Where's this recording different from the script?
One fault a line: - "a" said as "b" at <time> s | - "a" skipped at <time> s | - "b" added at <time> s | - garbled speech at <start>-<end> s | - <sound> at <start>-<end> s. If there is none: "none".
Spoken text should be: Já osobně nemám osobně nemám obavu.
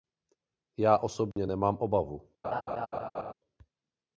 - dropout at 1.3-1.4 s
- "osobně nemám" skipped at 1.8 s
- laugh at 2.4-3.3 s